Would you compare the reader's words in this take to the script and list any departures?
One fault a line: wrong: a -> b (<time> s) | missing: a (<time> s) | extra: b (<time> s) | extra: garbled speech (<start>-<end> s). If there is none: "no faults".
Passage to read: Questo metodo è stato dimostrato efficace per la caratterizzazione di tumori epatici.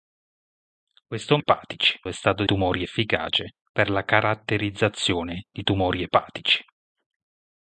wrong: metodo -> epatici (1.4 s)
wrong: dimostrato -> tumori (2.4 s)